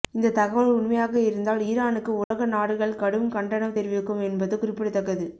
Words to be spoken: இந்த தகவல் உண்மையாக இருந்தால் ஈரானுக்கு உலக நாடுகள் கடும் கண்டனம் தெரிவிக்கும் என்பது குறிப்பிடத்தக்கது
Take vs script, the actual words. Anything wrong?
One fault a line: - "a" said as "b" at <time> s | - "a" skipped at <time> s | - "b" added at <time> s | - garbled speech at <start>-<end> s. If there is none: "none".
none